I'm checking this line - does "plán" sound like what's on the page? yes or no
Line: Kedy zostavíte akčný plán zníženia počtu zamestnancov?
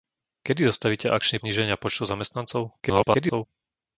no